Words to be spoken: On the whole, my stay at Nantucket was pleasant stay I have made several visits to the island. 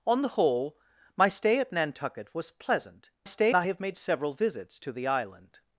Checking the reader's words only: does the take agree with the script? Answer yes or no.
yes